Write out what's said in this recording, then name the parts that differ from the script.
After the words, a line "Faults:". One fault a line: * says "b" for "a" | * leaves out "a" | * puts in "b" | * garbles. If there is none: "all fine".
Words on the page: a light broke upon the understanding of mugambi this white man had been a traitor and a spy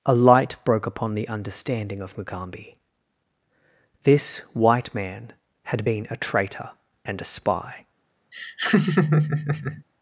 a light broke upon the understanding of mugambi this white man had been a traitor and a spy
Faults:
all fine